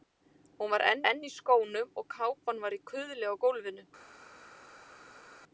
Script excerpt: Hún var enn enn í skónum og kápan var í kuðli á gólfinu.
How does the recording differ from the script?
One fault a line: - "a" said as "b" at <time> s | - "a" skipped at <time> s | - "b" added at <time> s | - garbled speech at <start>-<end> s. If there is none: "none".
none